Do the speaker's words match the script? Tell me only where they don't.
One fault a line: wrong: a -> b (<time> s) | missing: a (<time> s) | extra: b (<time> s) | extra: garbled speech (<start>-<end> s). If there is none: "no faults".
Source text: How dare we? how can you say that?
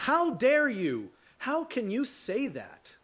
wrong: we -> you (0.7 s)